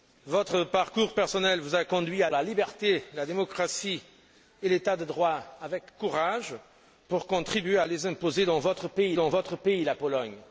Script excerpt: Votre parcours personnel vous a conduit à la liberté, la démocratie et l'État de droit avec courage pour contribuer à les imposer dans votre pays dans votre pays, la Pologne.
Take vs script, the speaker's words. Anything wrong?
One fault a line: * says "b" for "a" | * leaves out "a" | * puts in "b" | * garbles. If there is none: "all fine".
all fine